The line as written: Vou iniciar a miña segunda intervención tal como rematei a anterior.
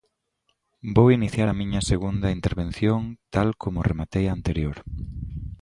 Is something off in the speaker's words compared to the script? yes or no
no